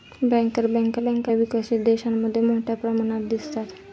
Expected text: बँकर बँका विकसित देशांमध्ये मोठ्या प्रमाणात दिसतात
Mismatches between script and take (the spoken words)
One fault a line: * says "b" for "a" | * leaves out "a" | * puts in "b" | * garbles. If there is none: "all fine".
* puts in "बँका"